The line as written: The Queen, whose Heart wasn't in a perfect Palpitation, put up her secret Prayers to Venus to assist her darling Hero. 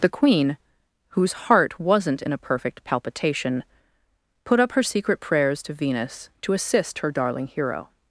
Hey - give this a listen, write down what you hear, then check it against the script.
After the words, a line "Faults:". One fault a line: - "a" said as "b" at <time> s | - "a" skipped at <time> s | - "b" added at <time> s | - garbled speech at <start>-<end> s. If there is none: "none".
The Queen, whose Heart wasn't in a perfect Palpitation, put up her secret Prayers to Venus to assist her darling Hero.
Faults:
none